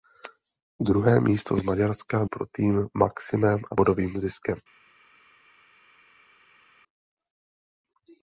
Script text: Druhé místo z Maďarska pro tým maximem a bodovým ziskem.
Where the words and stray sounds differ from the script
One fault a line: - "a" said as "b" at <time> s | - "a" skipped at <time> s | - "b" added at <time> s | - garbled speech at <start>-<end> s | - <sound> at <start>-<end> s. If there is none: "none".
none